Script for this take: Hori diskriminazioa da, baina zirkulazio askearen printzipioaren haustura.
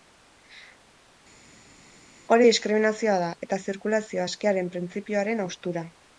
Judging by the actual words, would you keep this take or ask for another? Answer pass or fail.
fail